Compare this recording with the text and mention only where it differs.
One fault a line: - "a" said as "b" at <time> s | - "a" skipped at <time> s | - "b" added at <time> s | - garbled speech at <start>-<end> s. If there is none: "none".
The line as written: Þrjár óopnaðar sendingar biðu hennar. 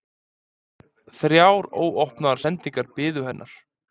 none